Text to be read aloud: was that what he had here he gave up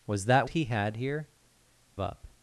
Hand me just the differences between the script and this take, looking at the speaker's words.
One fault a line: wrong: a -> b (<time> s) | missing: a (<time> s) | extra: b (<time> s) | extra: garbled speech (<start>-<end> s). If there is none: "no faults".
missing: what (0.5 s)
missing: he gave (1.3 s)